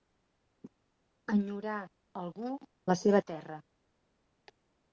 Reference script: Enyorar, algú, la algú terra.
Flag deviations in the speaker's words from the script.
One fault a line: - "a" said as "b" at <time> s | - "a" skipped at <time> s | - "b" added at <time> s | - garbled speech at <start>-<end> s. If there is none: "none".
- "algú" said as "seva" at 3.0 s